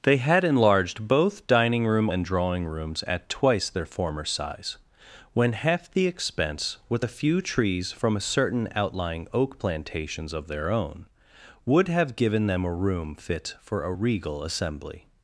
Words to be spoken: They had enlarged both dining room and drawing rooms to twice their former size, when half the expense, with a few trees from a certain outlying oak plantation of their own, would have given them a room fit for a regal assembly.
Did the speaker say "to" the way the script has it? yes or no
no